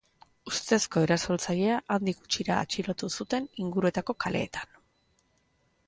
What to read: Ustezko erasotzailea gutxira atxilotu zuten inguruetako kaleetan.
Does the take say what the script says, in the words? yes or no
no